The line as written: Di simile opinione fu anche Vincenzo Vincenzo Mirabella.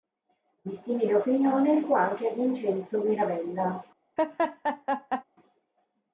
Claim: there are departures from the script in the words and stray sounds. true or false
true